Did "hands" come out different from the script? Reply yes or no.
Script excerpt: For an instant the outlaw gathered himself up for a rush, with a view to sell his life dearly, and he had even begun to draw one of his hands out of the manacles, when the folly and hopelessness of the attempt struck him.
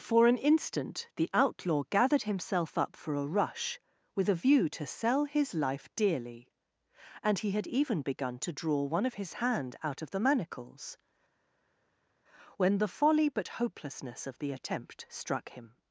yes